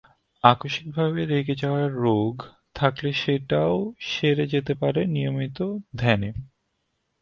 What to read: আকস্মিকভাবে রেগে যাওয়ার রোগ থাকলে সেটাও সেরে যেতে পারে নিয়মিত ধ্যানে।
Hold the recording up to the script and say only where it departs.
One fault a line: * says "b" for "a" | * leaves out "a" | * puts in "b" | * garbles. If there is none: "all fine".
all fine